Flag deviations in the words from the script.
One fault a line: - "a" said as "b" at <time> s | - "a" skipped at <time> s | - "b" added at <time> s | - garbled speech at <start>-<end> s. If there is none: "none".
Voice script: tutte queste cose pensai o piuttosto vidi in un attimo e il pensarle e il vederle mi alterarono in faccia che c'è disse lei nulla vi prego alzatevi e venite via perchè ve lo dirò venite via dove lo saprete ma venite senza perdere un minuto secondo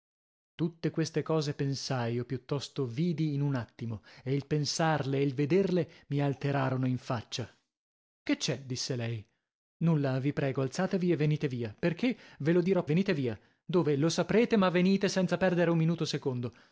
none